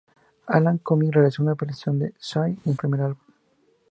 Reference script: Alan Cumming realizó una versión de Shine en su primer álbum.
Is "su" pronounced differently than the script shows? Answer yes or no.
yes